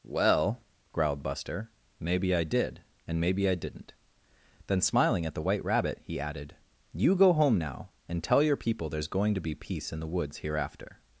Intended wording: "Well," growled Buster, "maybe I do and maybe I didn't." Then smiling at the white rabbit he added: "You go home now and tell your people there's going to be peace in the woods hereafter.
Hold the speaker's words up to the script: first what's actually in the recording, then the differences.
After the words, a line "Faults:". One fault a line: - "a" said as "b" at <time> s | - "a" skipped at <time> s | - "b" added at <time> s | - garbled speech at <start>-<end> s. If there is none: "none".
"Well," growled Buster, "maybe I did and maybe I didn't." Then smiling at the white rabbit he added: "You go home now and tell your people there's going to be peace in the woods hereafter.
Faults:
- "do" said as "did" at 2.4 s